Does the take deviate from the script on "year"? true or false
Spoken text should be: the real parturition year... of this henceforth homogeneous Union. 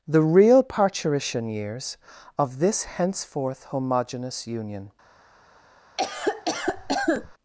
true